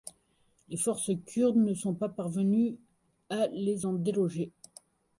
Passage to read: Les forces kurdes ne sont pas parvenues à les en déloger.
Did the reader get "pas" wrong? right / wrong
right